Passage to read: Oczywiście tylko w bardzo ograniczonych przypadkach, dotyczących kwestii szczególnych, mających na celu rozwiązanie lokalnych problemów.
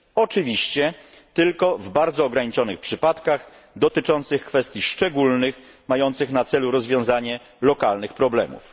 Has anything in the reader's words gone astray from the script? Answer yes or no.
no